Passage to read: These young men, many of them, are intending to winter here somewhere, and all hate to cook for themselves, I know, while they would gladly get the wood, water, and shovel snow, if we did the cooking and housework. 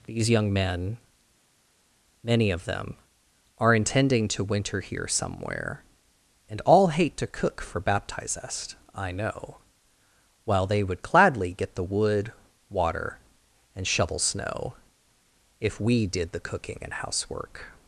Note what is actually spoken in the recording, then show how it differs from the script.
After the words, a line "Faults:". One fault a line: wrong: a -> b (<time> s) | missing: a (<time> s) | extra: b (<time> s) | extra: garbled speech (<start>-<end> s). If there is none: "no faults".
These young men, many of them, are intending to winter here somewhere, and all hate to cook for baptizest, I know, while they would gladly get the wood, water, and shovel snow, if we did the cooking and housework.
Faults:
wrong: themselves -> baptizest (7.8 s)